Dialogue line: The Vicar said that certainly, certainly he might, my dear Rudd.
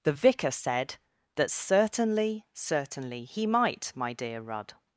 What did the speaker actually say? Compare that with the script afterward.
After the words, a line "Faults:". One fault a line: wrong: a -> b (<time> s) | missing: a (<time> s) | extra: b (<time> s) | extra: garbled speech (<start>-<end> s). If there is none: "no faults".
The Vicar said that certainly, certainly he might, my dear Rudd.
Faults:
no faults